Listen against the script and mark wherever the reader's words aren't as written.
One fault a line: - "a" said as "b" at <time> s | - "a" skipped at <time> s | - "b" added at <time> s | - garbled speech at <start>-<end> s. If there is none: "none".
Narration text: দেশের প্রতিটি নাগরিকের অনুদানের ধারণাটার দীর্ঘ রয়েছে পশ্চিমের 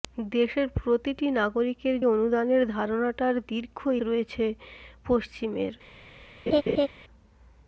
none